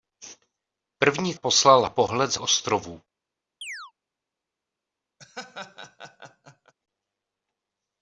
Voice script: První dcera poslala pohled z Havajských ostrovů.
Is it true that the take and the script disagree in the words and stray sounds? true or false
true